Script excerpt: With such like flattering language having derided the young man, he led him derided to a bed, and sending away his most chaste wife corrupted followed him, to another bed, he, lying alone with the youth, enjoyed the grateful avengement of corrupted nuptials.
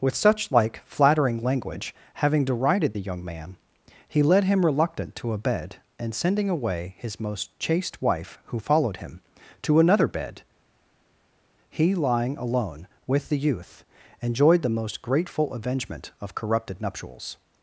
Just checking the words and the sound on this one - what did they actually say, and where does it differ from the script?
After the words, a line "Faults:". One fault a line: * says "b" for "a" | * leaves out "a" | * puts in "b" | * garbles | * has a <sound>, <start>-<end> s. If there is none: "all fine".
With such like flattering language having derided the young man, he led him reluctant to a bed, and sending away his most chaste wife who followed him, to another bed, he, lying alone with the youth, enjoyed the most grateful avengement of corrupted nuptials.
Faults:
* says "reluctant" for "derided"
* says "who" for "corrupted"
* puts in "most"